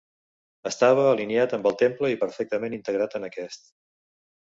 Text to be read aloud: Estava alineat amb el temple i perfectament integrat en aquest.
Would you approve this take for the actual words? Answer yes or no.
yes